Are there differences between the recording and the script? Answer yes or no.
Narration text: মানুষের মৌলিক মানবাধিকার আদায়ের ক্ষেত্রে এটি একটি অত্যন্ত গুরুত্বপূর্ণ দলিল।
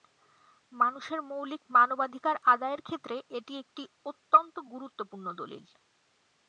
no